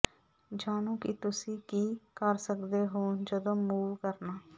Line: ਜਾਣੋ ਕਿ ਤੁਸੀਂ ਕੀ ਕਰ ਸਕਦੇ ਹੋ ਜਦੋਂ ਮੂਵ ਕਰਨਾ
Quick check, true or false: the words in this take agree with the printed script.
true